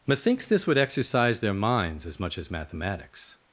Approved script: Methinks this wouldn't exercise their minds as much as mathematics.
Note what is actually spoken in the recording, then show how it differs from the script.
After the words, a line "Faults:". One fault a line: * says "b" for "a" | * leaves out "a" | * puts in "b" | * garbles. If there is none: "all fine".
Methinks this would exercise their minds as much as mathematics.
Faults:
* says "would" for "wouldn't"